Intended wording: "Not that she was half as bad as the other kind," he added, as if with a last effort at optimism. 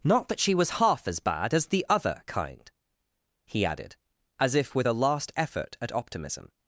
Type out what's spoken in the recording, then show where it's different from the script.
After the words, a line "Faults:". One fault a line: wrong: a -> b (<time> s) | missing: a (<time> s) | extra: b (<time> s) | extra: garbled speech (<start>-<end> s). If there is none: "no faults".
"Not that she was half as bad as the other kind," he added, as if with a last effort at optimism.
Faults:
no faults